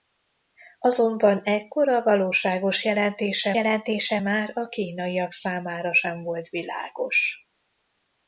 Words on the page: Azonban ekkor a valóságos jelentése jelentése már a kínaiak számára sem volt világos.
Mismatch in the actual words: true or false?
false